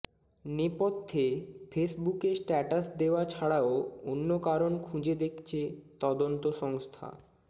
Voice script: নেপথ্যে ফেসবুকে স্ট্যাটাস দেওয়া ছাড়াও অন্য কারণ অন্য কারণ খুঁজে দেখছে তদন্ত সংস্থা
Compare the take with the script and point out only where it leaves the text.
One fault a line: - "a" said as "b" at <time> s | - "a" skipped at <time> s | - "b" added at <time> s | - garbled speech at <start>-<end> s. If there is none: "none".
- "অন্য কারণ" skipped at 4.7 s